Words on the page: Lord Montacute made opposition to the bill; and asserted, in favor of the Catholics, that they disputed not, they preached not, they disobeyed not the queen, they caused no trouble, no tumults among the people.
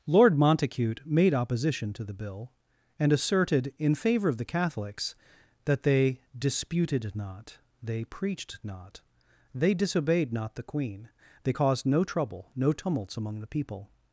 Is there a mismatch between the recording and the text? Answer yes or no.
no